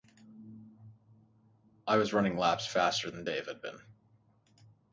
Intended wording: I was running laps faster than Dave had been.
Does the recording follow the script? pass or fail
pass